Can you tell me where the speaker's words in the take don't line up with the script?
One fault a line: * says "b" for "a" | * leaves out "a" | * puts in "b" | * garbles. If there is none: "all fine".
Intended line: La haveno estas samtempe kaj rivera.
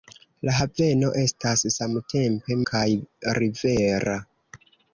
all fine